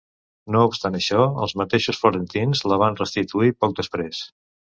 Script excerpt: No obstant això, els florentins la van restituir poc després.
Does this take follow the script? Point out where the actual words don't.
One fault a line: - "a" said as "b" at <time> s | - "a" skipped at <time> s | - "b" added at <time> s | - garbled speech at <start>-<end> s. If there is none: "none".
- "mateixos" added at 1.6 s